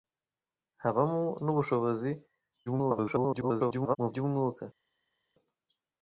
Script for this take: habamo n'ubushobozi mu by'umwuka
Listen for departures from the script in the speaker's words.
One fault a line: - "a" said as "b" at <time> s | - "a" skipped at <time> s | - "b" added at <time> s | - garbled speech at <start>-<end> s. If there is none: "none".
- garbled speech at 2.7-4.0 s